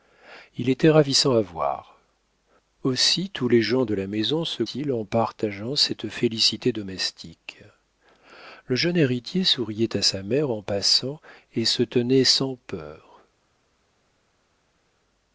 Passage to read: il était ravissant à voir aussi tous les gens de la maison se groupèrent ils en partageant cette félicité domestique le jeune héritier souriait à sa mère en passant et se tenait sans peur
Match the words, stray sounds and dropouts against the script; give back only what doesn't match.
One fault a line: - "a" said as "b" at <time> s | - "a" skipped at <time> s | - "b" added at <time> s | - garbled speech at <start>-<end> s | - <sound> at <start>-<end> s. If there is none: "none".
- "groupèrent" skipped at 4.6 s